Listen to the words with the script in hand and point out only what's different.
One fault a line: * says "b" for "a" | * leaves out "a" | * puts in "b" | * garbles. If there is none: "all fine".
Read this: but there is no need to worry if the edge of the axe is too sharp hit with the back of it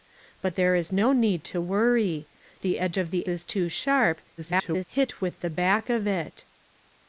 * leaves out "if"
* leaves out "axe"
* garbles